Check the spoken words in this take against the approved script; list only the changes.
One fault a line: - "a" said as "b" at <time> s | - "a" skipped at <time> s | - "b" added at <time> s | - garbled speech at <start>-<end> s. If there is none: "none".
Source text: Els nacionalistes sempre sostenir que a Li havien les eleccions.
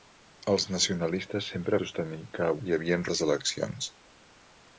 none